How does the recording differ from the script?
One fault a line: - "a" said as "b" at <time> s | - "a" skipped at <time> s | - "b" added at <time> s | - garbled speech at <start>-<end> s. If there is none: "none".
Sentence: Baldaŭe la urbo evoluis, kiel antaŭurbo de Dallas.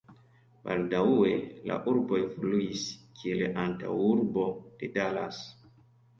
none